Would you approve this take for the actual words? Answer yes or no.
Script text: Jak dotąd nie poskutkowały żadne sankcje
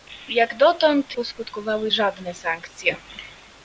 no